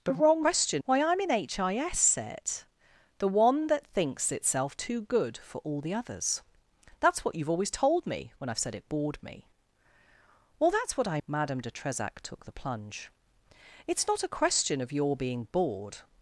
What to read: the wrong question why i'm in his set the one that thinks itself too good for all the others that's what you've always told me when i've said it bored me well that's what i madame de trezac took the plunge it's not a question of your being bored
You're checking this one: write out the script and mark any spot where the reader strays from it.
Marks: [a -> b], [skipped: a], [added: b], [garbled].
the wrong question why i'm in his set the one that thinks itself too good for all the others that's what you've always told me when i've said it bored me well that's what i madame de trezac took the plunge it's not a question of your being bored